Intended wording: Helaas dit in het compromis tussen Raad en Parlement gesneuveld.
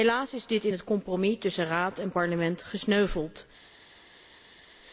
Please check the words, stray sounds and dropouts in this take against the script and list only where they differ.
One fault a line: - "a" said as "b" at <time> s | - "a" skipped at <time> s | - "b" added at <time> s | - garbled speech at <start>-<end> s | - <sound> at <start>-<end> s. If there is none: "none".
- "is" added at 0.3 s